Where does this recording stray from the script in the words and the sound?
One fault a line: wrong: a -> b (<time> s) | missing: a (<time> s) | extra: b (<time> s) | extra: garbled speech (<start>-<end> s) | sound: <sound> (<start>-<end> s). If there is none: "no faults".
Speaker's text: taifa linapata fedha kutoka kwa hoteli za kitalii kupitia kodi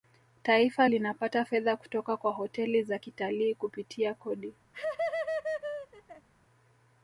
sound: laugh (4.7-6.3 s)